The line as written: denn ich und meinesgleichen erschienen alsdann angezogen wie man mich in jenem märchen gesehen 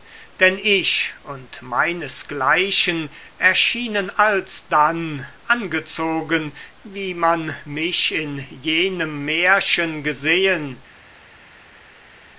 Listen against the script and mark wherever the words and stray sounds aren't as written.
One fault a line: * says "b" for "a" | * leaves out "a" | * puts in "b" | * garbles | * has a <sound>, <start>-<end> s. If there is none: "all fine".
all fine